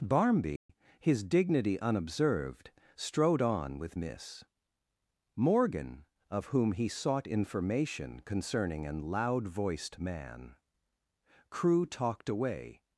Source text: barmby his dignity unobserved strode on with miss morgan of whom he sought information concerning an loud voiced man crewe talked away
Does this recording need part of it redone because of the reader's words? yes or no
no